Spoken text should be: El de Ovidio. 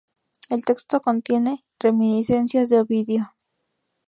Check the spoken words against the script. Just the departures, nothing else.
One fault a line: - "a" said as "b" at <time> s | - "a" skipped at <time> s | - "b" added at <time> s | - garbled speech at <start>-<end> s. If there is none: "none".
- "texto contiene reminiscencias" added at 0.7 s